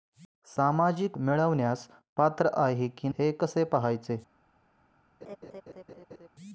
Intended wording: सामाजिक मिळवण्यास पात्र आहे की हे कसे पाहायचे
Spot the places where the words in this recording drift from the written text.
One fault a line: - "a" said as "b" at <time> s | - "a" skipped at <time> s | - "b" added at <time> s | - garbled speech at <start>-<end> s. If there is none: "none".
none